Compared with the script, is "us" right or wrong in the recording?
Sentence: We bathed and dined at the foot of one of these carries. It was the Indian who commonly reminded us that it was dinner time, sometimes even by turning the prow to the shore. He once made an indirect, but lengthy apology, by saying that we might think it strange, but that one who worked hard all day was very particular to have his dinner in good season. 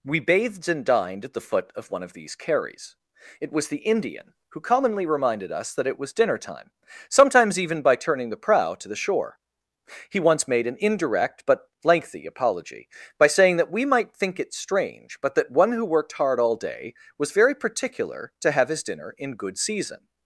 right